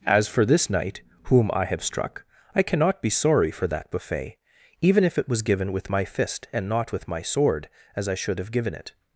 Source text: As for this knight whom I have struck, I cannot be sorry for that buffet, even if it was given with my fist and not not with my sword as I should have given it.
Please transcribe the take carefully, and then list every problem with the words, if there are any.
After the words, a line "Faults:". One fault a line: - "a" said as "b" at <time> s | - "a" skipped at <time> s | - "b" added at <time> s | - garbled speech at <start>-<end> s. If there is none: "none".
As for this knight whom I have struck, I cannot be sorry for that buffet, even if it was given with my fist and not with my sword as I should have given it.
Faults:
- "not" skipped at 6.9 s